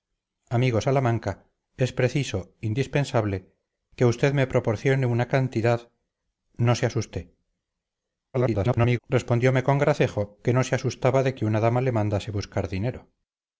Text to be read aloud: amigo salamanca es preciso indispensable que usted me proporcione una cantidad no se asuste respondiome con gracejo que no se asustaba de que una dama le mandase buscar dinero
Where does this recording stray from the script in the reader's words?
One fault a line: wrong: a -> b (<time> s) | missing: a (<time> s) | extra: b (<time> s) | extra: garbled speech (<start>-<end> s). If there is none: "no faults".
extra: garbled speech (8.3-9.0 s)